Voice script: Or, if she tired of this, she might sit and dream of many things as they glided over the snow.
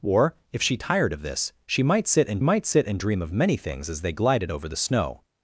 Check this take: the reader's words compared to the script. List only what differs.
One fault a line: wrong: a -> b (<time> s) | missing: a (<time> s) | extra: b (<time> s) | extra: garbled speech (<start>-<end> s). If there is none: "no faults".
extra: might sit and (2.4 s)